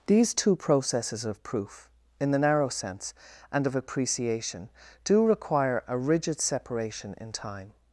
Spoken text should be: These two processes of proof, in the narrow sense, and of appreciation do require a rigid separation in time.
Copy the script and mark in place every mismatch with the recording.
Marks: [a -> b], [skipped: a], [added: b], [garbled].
These two processes of proof, in the narrow sense, and of appreciation do require a rigid separation in time.